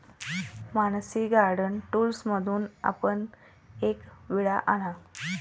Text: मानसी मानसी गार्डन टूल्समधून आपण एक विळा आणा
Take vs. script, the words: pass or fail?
fail